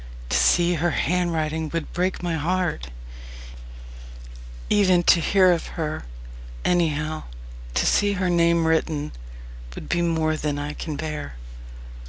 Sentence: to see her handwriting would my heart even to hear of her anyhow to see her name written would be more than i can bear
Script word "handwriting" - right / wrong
right